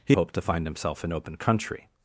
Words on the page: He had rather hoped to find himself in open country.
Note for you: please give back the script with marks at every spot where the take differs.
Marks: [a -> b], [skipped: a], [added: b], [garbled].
He [skipped: had rather] hoped to find himself in open country.